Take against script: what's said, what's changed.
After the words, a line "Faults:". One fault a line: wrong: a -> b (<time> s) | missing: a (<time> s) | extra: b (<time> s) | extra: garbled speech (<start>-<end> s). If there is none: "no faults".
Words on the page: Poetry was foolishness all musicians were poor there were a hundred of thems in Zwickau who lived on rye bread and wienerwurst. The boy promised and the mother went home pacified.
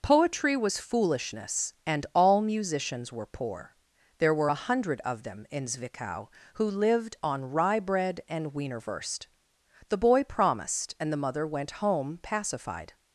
Poetry was foolishness and all musicians were poor there were a hundred of them in Zwickau who lived on rye bread and wienerwurst. The boy promised and the mother went home pacified.
Faults:
extra: and (1.9 s)
wrong: thems -> them (5.2 s)